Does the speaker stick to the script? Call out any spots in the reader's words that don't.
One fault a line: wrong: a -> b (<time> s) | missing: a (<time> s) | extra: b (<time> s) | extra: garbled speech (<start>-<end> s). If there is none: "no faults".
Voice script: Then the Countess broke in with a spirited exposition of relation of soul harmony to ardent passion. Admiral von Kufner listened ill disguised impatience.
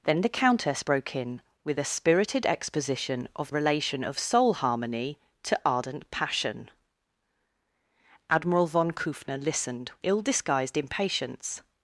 no faults